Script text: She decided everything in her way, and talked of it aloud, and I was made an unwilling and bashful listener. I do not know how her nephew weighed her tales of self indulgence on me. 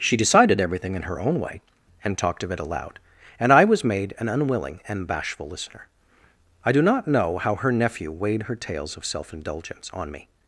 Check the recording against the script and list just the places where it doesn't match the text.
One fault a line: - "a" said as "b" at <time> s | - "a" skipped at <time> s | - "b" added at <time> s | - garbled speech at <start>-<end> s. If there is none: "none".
- "own" added at 1.2 s